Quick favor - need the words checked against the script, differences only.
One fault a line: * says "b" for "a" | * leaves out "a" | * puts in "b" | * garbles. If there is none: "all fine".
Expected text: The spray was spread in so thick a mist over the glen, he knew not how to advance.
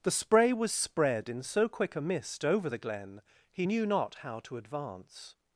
* says "quick" for "thick"